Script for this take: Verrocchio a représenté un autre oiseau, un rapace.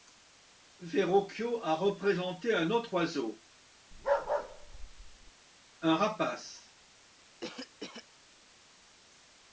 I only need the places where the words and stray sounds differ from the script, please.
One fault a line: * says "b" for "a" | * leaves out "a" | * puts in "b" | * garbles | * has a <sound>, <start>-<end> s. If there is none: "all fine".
* has a bark, 3.9-5.3 s
* has a cough, 7.4-8.1 s